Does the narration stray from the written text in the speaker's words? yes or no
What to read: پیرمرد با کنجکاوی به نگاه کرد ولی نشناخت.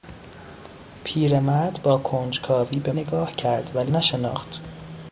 no